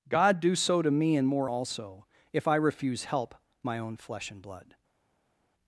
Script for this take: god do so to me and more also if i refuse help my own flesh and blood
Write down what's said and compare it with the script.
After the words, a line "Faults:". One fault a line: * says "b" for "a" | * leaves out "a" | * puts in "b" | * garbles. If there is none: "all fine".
god do so to me and more also if i refuse help my own flesh and blood
Faults:
all fine